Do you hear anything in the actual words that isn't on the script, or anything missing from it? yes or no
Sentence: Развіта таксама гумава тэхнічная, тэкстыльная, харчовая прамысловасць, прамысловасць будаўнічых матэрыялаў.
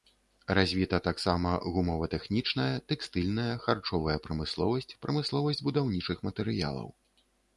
no